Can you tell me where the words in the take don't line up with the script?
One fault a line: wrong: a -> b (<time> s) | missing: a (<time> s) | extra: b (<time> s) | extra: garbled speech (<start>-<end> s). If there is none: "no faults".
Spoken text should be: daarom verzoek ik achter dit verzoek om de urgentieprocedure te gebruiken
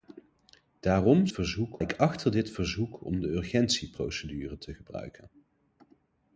no faults